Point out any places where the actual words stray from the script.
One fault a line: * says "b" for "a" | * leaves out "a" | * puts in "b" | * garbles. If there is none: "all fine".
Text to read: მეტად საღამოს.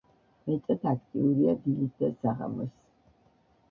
* puts in "აქტიურია დილით და"